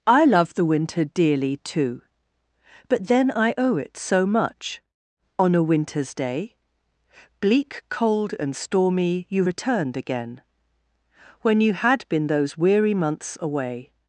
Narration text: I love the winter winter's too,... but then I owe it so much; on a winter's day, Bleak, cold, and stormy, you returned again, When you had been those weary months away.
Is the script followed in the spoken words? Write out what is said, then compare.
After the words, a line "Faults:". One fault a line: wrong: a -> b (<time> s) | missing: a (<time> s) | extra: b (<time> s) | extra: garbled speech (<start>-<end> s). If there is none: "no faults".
I love the winter dearly too,... but then I owe it so much; on a winter's day, Bleak, cold, and stormy, you returned again, When you had been those weary months away.
Faults:
wrong: winter's -> dearly (1.1 s)